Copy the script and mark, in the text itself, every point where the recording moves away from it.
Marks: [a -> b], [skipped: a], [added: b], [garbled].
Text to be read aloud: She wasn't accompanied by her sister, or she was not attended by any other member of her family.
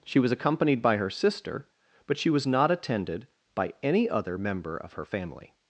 She [wasn't -> was] accompanied by her sister, [or -> but] she was not attended by any other member of her family.